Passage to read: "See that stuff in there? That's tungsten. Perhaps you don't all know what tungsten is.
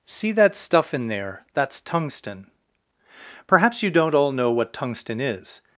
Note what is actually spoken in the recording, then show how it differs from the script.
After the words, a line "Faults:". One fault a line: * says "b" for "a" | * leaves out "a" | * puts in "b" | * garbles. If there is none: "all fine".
"See that stuff in there? That's tungsten. Perhaps you don't all know what tungsten is.
Faults:
all fine